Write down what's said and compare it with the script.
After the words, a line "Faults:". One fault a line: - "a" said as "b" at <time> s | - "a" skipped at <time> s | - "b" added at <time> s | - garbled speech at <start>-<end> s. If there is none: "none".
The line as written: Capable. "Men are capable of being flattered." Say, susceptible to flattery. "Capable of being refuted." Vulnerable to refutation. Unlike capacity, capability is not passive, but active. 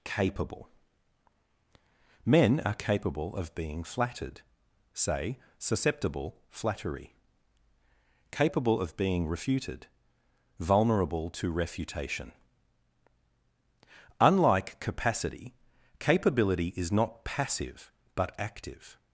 Capable. "Men are capable of being flattered." Say, susceptible flattery. "Capable of being refuted." Vulnerable to refutation. Unlike capacity, capability is not passive, but active.
Faults:
- "to" skipped at 6.4 s